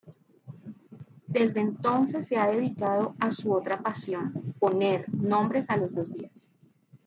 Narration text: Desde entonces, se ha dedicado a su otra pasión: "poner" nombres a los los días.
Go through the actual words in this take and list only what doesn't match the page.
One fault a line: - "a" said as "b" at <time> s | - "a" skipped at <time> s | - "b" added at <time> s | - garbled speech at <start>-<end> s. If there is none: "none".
none